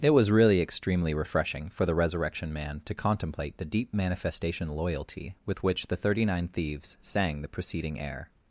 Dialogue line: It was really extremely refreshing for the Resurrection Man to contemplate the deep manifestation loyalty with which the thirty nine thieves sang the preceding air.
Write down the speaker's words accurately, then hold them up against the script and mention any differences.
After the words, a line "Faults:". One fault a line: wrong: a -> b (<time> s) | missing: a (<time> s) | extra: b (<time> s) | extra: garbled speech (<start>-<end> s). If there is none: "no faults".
It was really extremely refreshing for the Resurrection Man to contemplate the deep manifestation loyalty with which the thirty nine thieves sang the preceding air.
Faults:
no faults